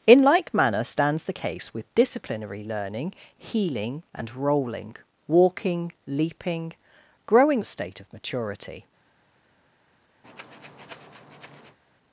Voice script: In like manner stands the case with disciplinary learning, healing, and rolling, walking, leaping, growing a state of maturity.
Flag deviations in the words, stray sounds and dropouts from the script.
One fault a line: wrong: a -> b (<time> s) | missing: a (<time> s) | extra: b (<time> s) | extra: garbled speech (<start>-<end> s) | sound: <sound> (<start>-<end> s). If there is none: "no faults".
sound: breath (10.2-11.8 s)